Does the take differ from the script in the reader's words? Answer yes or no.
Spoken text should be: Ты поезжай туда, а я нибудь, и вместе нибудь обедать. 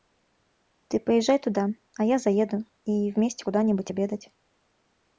yes